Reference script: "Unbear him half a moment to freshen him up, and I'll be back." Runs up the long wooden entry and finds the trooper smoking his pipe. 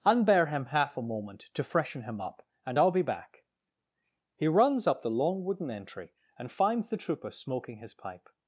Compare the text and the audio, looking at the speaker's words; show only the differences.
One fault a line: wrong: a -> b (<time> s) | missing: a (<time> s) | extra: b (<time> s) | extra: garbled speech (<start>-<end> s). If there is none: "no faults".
extra: He (4.4 s)